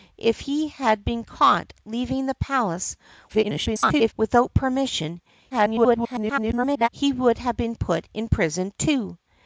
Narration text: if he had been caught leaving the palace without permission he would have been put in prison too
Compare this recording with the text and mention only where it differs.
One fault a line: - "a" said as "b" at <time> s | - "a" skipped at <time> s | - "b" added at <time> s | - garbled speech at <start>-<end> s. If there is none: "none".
- garbled speech at 3.3-4.1 s
- garbled speech at 5.5-6.9 s